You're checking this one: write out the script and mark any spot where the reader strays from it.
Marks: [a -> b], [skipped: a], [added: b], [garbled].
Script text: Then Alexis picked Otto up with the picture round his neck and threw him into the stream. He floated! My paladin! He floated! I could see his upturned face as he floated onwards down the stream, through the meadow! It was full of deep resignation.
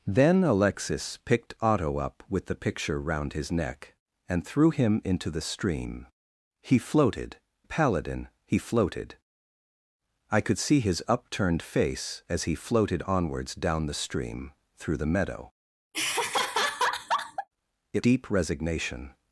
Then Alexis picked Otto up with the picture round his neck and threw him into the stream. He floated! [skipped: My] paladin! He floated! I could see his upturned face as he floated onwards down the stream, through the meadow! It [skipped: was full of] deep resignation.